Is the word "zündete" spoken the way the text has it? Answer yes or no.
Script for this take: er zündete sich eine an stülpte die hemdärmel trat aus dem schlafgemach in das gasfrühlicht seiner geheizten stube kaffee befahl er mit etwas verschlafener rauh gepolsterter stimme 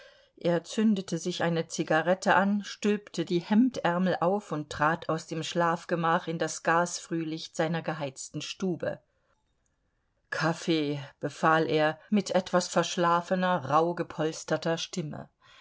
yes